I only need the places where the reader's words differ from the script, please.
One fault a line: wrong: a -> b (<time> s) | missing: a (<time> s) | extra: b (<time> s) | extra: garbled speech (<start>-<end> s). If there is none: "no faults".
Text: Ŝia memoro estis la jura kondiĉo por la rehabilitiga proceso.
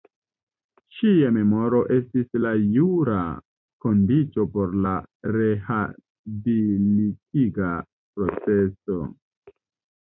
no faults